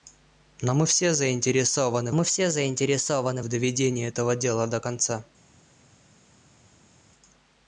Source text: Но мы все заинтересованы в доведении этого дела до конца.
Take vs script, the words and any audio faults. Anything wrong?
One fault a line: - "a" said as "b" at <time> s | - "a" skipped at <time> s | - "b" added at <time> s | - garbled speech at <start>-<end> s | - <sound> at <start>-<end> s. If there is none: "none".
- "мы все заинтересованы" added at 2.1 s